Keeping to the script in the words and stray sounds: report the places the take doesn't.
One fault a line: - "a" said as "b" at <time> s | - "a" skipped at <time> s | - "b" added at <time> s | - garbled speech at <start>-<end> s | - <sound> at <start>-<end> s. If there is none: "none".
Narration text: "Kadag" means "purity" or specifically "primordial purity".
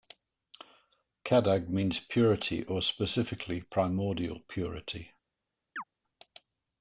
- chirp at 5.8-5.8 s